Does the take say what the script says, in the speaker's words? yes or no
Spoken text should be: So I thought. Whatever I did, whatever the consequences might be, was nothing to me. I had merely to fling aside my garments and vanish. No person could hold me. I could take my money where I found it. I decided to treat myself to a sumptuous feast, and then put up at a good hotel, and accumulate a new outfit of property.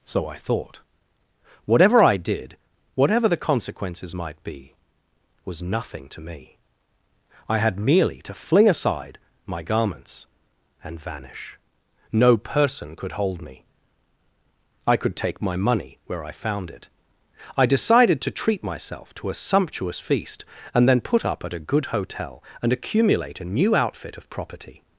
yes